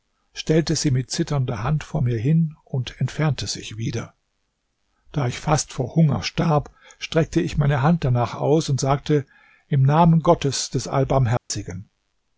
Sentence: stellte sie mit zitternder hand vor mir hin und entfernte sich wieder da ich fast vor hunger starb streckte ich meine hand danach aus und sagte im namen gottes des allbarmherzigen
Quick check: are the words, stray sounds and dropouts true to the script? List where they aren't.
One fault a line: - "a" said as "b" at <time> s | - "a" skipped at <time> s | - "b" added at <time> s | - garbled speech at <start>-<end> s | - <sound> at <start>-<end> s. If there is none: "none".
- dropout at 11.4-11.5 s